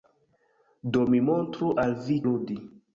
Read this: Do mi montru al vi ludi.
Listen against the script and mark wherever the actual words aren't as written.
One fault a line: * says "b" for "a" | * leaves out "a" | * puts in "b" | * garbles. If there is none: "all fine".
all fine